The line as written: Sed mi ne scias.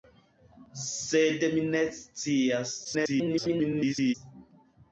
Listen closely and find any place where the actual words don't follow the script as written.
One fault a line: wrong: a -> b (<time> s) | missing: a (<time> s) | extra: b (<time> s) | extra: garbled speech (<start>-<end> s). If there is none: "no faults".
extra: garbled speech (2.8-4.1 s)